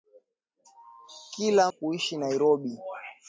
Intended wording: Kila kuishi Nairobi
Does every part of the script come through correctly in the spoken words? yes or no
yes